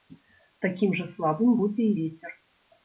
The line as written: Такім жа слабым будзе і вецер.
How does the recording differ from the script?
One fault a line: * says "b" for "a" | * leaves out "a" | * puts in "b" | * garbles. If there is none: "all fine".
all fine